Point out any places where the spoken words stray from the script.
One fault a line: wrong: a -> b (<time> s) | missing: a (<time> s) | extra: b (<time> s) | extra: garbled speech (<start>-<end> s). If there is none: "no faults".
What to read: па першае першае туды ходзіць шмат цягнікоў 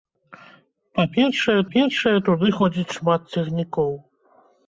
no faults